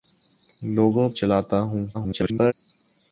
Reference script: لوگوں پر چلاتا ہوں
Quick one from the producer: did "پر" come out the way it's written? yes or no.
no